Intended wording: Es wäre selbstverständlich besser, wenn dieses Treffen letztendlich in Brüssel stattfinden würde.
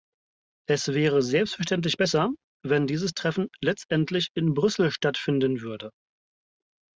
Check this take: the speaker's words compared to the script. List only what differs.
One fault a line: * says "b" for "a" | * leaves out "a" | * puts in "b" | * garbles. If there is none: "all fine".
all fine